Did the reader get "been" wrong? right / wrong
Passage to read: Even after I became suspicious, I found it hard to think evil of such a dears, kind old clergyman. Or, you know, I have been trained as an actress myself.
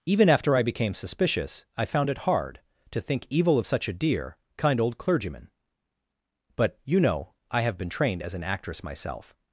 right